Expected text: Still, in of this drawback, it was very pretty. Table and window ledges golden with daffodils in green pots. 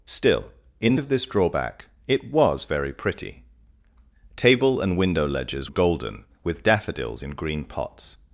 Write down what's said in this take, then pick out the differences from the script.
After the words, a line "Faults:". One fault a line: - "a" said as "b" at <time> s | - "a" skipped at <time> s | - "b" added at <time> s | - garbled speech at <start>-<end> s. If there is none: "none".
Still, in of this drawback, it was very pretty. Table and window ledges golden with daffodils in green pots.
Faults:
none